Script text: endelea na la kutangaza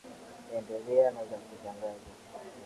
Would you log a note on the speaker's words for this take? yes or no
no